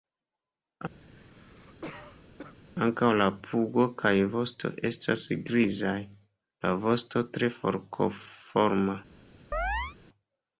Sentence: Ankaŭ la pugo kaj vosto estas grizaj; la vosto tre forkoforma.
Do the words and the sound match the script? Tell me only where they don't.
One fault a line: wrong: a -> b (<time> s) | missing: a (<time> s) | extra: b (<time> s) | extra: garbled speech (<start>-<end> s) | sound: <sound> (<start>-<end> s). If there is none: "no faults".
sound: cough (1.0-2.6 s)
sound: chirp (9.5-10.0 s)